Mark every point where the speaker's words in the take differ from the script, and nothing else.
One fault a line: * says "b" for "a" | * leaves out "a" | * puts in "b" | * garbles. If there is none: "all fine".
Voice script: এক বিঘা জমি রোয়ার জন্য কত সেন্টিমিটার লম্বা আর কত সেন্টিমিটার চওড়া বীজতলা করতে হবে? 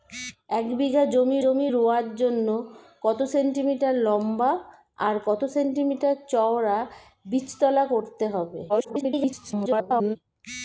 * puts in "জমি"
* garbles